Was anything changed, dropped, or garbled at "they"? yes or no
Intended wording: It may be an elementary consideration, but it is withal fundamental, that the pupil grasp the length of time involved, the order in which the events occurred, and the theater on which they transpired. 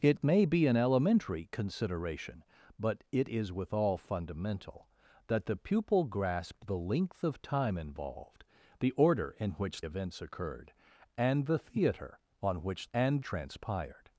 yes